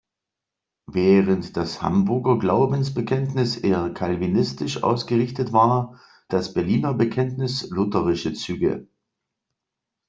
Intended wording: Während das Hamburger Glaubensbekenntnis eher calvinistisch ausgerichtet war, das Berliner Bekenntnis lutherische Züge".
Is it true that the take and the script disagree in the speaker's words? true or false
false